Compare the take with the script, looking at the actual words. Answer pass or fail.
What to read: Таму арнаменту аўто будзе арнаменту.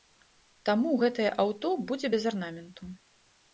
fail